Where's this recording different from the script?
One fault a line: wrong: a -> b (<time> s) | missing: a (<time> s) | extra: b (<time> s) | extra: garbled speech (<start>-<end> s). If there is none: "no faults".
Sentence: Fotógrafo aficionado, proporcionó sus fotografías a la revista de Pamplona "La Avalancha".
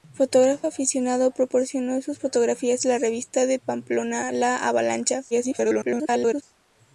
extra: garbled speech (5.3-6.4 s)